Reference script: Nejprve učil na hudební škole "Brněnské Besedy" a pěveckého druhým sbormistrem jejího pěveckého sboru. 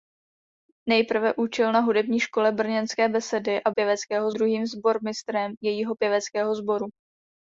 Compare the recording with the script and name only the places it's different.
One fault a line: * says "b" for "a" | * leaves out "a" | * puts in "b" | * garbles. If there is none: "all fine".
all fine